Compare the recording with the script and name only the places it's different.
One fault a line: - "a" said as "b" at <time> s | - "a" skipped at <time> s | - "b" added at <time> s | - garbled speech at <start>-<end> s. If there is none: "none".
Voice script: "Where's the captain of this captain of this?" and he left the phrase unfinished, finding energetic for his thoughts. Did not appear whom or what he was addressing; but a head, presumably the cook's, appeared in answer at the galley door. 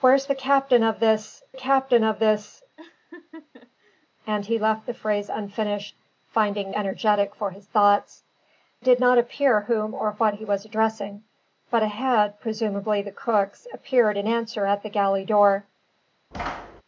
none